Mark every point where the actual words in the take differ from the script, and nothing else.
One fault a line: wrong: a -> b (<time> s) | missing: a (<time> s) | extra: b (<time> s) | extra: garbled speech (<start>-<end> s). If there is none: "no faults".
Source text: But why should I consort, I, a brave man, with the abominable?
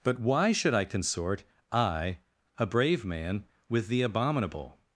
no faults